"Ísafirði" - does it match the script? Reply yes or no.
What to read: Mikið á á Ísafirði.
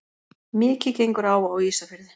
yes